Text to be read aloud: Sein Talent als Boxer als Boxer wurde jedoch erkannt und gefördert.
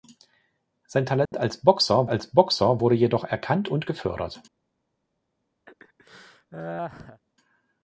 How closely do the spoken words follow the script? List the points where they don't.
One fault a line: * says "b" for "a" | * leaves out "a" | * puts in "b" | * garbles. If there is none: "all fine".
all fine